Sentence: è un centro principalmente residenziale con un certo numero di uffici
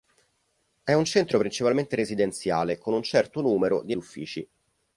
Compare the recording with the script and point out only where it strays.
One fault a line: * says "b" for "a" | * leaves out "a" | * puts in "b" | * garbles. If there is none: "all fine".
all fine